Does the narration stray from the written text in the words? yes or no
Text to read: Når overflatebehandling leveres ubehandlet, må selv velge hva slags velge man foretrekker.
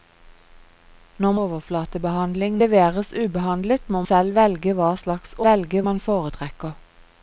no